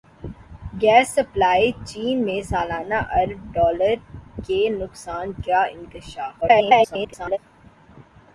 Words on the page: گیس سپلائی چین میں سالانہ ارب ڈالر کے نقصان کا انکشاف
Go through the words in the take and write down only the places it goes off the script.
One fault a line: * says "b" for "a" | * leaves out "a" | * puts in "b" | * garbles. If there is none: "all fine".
* garbles